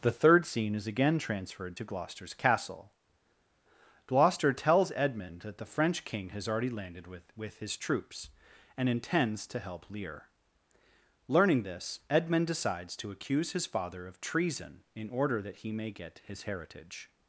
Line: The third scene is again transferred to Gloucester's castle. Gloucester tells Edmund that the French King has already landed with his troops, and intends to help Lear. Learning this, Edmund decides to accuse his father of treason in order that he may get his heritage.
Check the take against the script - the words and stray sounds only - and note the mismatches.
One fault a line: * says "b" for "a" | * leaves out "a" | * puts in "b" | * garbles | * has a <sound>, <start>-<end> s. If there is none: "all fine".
* puts in "with"